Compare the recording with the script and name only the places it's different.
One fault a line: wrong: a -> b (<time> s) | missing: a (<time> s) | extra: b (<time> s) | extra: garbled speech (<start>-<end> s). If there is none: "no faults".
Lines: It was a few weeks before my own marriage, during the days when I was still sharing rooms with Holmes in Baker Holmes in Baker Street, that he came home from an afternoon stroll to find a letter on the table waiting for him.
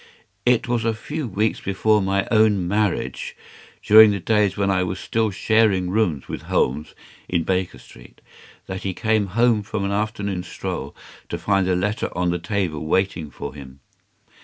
missing: Holmes in Baker (7.8 s)